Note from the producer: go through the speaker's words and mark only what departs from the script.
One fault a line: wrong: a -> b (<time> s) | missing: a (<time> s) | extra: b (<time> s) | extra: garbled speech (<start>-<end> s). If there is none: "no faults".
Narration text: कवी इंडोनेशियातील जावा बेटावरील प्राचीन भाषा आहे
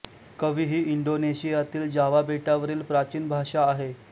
extra: ही (0.7 s)